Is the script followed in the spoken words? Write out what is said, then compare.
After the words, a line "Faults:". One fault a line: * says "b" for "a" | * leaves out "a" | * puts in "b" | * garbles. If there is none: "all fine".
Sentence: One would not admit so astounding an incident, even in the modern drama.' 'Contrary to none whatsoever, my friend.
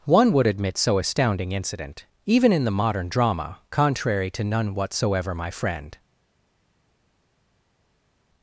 One would admit so astounding incident, even in the modern drama.' 'Contrary to none whatsoever, my friend.
Faults:
* leaves out "not"
* leaves out "an"